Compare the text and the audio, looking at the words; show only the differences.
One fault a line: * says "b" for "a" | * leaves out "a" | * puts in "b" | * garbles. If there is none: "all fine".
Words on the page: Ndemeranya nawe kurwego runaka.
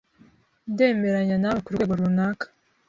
all fine